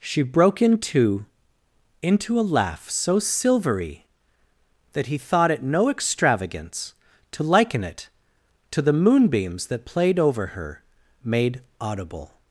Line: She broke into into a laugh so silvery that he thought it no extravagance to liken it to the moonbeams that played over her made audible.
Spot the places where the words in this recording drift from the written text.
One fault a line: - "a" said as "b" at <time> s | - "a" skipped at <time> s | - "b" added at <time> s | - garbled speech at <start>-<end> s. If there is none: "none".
none